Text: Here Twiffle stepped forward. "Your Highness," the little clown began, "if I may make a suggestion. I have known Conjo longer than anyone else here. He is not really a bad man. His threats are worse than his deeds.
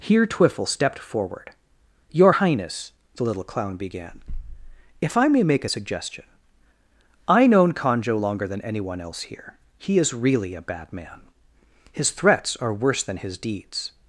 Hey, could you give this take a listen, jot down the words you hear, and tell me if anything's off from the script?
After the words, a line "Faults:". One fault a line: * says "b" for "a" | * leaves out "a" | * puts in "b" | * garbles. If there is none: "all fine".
Here Twiffle stepped forward. "Your Highness," the little clown began, "if I may make a suggestion. I known Conjo longer than anyone else here. He is really a bad man. His threats are worse than his deeds.
Faults:
* leaves out "have"
* leaves out "not"